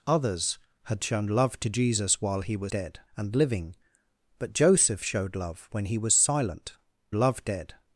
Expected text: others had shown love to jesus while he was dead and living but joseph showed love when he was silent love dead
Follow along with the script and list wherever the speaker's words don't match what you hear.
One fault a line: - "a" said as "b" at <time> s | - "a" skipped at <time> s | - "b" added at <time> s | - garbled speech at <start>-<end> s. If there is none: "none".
none